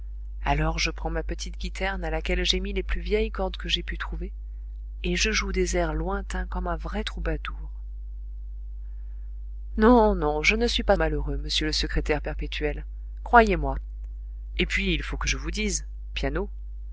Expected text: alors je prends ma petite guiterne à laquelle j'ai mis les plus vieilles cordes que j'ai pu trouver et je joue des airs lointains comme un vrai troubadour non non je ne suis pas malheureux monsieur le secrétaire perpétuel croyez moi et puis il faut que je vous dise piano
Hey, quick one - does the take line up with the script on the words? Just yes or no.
yes